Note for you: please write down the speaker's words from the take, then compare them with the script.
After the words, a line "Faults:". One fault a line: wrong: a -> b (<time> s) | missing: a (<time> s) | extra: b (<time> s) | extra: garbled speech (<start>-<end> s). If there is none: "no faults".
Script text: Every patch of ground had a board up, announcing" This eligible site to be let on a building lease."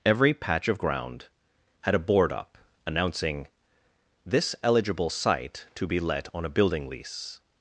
Every patch of ground had a board up, announcing" This eligible site to be let on a building lease."
Faults:
no faults